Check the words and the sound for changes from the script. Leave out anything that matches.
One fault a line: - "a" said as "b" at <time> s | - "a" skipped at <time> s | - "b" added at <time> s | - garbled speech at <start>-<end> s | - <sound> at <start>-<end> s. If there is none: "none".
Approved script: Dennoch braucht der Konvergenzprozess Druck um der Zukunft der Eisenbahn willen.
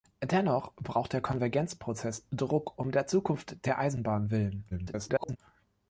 - garbled speech at 4.7-5.4 s